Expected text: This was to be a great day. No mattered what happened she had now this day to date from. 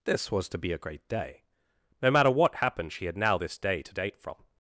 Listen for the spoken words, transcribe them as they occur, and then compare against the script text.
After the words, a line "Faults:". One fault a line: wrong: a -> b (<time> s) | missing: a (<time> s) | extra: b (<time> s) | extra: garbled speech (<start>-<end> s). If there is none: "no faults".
This was to be a great day. No matter what happened she had now this day to date from.
Faults:
wrong: mattered -> matter (2.1 s)